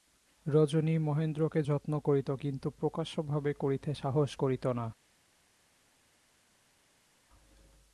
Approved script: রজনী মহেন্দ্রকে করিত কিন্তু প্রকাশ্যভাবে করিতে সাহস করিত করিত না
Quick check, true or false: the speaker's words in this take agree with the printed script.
false